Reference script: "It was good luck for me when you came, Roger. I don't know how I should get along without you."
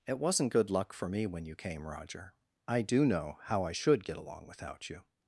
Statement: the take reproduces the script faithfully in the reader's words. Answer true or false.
false